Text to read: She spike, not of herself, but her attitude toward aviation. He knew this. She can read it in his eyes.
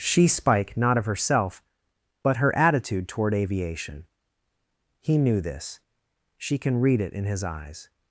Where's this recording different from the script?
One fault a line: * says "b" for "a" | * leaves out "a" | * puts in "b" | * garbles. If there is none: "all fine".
all fine